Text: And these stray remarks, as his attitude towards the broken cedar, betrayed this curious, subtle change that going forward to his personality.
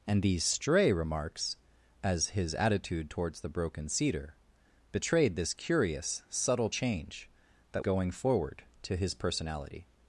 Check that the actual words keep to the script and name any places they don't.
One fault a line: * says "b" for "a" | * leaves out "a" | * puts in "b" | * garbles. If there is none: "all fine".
all fine